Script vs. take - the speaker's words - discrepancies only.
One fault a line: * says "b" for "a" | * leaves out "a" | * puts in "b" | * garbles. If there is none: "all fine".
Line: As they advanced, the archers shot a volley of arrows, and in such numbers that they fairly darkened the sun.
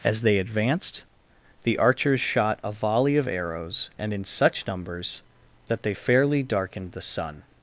all fine